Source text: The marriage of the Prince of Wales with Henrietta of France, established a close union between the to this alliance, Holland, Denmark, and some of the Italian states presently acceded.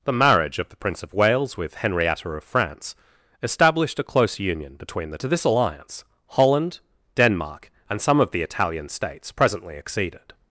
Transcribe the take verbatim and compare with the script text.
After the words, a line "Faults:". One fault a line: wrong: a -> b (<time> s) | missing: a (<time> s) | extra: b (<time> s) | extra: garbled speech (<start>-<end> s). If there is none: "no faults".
The marriage of the Prince of Wales with Henrietta of France, established a close union between the to this alliance, Holland, Denmark, and some of the Italian states presently acceded.
Faults:
no faults